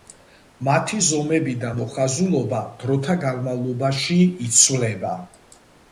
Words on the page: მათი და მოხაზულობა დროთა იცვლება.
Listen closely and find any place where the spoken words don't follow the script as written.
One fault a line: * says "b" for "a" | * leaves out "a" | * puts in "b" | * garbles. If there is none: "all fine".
* puts in "ზომები"
* puts in "განმავლობაში"